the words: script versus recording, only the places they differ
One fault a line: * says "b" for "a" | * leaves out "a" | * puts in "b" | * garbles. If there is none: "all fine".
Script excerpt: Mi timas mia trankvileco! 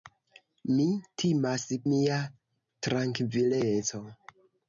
all fine